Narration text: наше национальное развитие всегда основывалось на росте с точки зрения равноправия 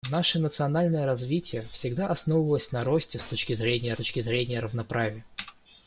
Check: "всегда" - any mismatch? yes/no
no